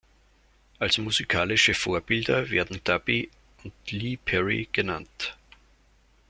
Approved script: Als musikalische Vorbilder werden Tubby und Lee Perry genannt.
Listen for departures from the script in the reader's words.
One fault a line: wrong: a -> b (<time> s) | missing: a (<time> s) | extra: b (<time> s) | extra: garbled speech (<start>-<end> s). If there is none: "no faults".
no faults